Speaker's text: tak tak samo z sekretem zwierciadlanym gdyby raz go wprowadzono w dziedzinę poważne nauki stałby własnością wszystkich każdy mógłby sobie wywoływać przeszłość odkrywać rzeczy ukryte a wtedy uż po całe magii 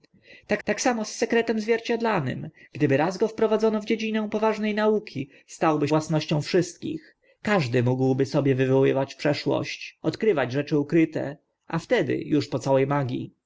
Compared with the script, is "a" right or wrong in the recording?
right